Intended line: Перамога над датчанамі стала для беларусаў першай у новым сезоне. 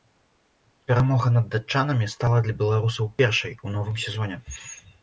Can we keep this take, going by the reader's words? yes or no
yes